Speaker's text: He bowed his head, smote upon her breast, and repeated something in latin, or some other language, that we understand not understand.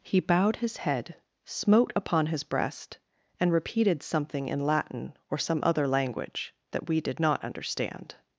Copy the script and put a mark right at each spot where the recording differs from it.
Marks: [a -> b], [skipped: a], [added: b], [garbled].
He bowed his head, smote upon [her -> his] breast, and repeated something in latin, or some other language, that we [understand -> did] not understand.